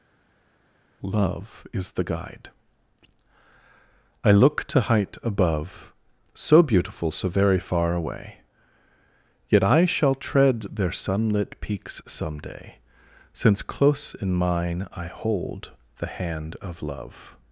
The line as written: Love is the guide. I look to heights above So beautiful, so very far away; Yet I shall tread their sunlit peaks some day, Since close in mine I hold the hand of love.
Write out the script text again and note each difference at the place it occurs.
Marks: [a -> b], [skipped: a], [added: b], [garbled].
Love is the guide. I look to [heights -> height] above So beautiful, so very far away; Yet I shall tread their sunlit peaks some day, Since close in mine I hold the hand of love.